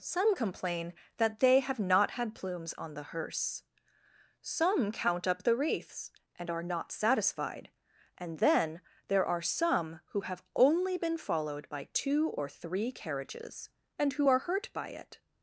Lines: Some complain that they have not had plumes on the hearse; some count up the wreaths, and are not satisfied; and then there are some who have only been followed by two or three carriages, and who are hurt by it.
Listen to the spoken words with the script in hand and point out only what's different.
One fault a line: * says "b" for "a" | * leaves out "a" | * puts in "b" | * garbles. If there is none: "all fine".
all fine